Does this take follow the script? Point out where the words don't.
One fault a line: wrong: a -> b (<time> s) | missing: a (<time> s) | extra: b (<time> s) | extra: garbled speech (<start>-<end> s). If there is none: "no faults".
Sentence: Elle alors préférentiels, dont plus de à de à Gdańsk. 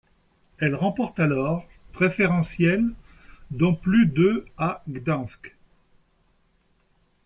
extra: remporte (0.7 s)
missing: de à (4.8 s)